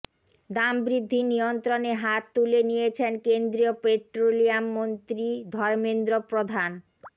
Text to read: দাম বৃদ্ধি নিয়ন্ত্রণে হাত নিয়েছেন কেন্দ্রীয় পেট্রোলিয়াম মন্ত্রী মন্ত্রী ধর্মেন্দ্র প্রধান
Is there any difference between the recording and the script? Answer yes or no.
yes